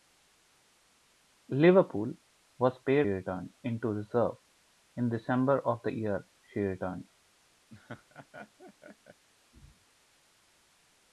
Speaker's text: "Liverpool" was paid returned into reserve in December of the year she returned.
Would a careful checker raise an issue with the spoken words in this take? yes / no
no